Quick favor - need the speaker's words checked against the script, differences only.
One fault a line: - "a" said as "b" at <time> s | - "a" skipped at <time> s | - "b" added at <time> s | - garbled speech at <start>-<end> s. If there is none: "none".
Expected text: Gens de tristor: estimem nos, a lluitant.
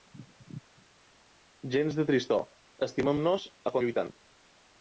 none